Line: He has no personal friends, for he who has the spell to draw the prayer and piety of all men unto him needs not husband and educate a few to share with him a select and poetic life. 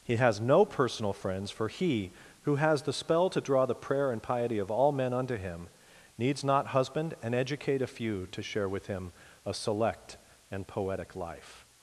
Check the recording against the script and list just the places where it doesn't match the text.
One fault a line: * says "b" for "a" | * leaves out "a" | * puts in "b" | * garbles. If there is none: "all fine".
all fine